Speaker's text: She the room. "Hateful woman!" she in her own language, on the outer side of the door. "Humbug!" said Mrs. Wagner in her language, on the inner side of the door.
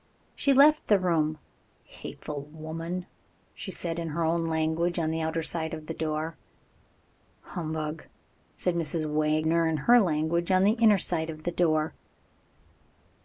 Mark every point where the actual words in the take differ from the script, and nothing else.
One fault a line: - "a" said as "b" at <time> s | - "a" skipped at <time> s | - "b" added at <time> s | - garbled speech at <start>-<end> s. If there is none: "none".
- "left" added at 0.5 s
- "said" added at 3.7 s